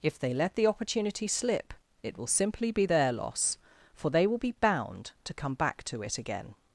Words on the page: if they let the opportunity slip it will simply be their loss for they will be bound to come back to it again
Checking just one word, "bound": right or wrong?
right